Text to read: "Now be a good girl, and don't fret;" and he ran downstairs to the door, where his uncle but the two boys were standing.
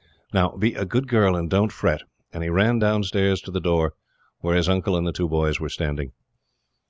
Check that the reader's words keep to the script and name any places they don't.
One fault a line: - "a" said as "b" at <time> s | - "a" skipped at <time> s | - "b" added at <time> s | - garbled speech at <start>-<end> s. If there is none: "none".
- "but" said as "and" at 4.9 s